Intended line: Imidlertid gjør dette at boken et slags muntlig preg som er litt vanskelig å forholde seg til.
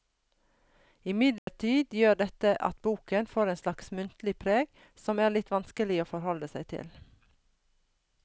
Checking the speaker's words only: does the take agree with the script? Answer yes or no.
no